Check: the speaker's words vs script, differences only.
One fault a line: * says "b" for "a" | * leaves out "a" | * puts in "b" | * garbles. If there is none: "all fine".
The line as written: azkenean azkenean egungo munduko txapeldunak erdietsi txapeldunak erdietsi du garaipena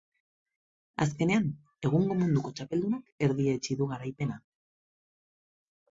* leaves out "azkenean"
* leaves out "txapeldunak erdietsi"